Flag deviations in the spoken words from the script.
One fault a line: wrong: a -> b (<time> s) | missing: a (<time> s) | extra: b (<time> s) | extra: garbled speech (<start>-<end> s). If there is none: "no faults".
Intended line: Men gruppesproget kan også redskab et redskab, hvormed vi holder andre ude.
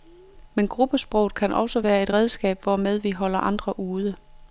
wrong: redskab -> være (1.8 s)